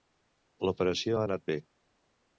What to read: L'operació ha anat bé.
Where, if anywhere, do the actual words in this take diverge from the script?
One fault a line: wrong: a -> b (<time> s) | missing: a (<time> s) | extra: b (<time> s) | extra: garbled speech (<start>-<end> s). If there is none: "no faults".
no faults